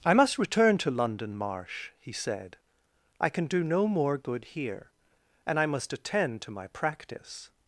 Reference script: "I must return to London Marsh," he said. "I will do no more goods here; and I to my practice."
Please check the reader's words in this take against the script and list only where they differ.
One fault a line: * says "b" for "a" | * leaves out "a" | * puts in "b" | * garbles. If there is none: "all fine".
* says "can" for "will"
* says "good" for "goods"
* puts in "must attend"